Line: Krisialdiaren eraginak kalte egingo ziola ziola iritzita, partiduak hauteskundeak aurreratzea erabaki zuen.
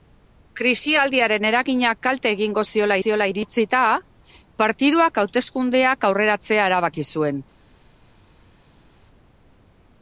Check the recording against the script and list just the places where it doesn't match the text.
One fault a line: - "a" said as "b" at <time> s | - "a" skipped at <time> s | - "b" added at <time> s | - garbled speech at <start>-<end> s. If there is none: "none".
none